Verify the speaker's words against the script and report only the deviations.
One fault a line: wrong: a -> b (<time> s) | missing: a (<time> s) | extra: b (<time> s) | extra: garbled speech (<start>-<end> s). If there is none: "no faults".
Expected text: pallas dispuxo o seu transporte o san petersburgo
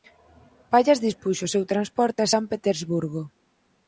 wrong: o -> a (2.2 s)